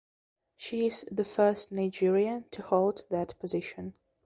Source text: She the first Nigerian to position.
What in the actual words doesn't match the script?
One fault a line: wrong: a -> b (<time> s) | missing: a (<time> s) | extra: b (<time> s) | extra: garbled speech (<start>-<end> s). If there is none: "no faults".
extra: is (0.9 s)
extra: hold that (2.6 s)